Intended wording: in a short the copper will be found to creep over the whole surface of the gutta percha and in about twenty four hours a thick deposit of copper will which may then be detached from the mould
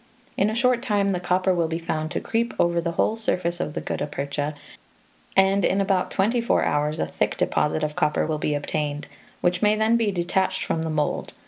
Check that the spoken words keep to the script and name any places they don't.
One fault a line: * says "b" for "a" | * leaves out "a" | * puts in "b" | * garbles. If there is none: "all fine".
* puts in "time"
* puts in "be obtained"